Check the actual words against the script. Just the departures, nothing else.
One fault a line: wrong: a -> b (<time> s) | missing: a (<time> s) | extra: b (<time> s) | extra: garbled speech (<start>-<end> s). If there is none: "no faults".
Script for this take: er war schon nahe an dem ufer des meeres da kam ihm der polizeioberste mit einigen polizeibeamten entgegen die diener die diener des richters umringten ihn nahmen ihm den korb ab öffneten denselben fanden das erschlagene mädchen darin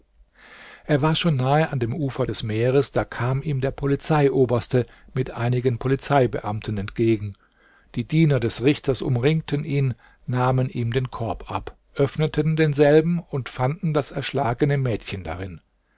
missing: die diener (8.4 s)
extra: und (13.2 s)